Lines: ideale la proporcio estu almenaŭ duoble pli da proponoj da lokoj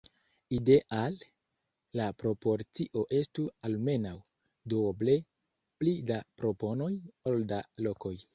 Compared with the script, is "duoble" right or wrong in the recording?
right